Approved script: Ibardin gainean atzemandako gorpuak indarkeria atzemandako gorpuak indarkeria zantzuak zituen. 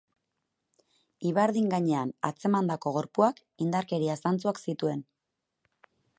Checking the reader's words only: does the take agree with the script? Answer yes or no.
no